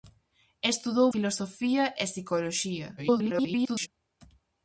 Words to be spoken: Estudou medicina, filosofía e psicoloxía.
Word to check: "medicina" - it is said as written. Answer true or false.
false